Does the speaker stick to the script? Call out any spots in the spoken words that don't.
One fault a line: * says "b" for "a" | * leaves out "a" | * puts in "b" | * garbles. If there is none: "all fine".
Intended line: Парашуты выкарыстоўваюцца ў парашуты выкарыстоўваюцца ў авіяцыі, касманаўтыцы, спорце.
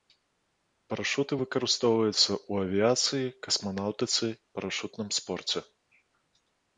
* leaves out "парашуты выкарыстоўваюцца ў"
* puts in "парашутным"